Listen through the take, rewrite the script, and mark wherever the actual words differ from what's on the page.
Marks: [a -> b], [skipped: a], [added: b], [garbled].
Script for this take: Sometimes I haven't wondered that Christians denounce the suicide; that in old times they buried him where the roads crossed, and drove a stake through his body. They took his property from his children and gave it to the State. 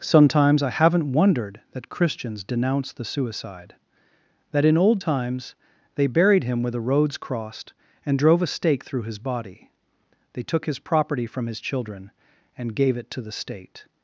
Sometimes I haven't wondered that Christians denounce the suicide; that in old times they buried him where the roads crossed, and drove a stake through his body. They took his property from his children and gave it to the State.